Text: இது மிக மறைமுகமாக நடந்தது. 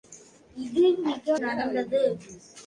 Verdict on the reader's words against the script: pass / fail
fail